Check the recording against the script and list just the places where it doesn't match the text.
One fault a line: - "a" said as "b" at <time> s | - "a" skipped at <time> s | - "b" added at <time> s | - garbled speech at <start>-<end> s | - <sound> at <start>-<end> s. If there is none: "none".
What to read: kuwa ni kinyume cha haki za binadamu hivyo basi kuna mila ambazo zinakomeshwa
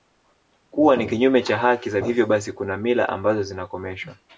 - "binadamu" skipped at 2.0 s